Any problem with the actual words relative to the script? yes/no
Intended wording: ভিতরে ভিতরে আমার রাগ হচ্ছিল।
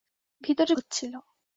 yes